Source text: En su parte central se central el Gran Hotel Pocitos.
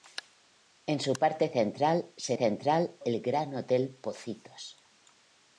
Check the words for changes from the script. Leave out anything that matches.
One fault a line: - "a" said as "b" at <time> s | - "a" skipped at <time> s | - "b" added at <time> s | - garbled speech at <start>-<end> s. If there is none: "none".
none